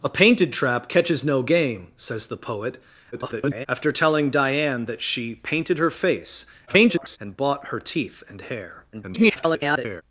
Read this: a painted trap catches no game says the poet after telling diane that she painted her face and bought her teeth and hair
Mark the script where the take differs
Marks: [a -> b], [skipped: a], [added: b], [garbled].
a painted trap catches no game says the poet [garbled] after telling diane that she painted her face [garbled] and bought her teeth and hair [garbled]